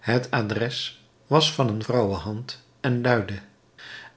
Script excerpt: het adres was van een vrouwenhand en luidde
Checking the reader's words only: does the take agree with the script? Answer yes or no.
yes